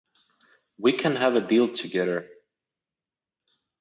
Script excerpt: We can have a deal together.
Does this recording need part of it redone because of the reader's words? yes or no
no